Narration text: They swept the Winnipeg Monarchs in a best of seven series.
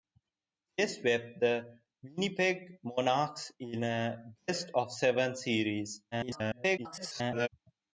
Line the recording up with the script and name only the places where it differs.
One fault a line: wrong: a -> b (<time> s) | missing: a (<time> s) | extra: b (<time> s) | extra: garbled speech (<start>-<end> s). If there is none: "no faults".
extra: garbled speech (6.1-7.5 s)